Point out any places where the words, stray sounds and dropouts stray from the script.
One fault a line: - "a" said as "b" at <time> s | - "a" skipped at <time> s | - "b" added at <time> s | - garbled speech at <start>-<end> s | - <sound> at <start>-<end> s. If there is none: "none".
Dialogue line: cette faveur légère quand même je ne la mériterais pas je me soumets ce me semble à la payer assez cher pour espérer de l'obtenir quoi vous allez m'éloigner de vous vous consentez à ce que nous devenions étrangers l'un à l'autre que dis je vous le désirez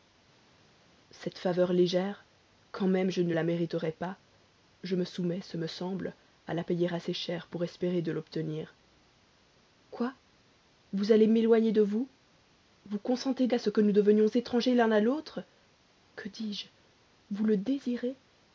none